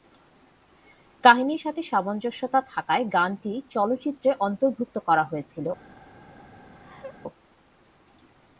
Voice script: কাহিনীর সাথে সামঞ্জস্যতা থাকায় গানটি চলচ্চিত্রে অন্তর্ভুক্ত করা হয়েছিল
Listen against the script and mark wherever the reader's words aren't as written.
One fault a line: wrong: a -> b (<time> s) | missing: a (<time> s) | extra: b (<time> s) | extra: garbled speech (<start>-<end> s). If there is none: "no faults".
no faults